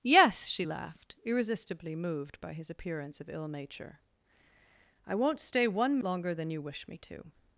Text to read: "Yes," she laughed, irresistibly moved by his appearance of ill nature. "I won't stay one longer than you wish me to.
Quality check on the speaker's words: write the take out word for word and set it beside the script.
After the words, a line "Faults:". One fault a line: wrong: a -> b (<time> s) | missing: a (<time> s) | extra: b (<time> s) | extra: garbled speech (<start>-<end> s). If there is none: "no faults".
"Yes," she laughed, irresistibly moved by his appearance of ill nature. "I won't stay one longer than you wish me to.
Faults:
no faults